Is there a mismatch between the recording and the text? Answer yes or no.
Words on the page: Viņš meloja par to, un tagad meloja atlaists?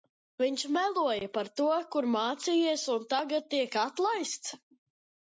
yes